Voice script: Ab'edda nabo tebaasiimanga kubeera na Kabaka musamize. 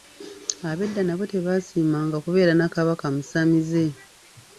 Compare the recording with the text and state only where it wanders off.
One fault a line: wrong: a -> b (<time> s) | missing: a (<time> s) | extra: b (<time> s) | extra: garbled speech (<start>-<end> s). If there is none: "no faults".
no faults